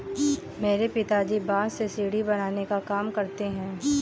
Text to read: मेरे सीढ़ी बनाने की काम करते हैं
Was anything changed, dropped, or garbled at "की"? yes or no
yes